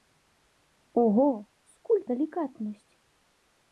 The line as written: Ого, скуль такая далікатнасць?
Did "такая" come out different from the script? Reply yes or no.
yes